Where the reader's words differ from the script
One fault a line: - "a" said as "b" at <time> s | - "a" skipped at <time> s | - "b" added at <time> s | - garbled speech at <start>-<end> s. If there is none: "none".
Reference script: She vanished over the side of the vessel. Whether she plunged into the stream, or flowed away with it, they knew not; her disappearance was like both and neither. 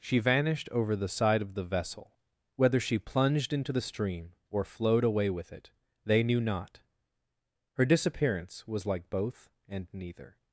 none